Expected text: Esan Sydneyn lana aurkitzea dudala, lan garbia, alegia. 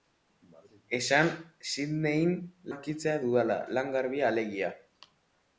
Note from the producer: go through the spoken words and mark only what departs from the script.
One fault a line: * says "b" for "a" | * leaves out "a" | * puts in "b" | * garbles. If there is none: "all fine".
* leaves out "lana"